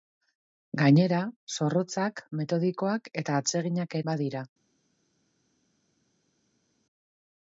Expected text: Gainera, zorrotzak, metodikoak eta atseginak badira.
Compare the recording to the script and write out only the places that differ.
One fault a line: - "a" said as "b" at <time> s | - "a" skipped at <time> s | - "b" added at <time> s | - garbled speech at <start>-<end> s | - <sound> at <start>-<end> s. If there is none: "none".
none